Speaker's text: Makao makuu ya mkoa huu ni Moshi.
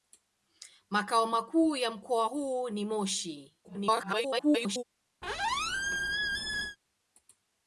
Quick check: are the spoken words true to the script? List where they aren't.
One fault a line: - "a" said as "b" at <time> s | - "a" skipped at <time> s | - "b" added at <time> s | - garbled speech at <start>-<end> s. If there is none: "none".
- garbled speech at 3.6-4.8 s